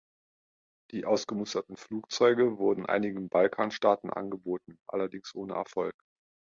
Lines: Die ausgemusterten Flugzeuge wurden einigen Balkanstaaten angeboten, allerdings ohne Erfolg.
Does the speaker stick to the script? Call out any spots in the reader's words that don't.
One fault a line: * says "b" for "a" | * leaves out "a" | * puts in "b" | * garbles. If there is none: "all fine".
all fine